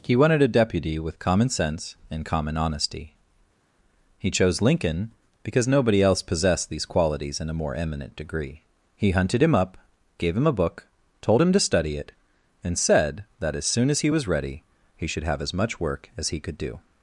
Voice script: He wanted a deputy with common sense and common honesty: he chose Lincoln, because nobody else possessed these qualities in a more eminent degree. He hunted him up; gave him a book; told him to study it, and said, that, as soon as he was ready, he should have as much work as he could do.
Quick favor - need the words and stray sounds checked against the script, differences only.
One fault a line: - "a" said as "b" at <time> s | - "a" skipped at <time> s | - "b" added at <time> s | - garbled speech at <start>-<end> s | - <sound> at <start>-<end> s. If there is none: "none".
none